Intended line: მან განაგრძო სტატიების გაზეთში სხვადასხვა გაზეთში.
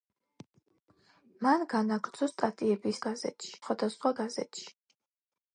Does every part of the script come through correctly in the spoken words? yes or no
yes